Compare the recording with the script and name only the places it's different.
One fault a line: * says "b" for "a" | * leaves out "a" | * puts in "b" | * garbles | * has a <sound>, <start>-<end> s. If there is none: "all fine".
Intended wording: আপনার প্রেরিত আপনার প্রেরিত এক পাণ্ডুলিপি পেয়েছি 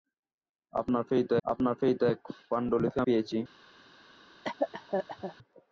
* has a cough, 4.4-5.4 s